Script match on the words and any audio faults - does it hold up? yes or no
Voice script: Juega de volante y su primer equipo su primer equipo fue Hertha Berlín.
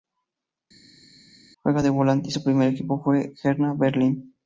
no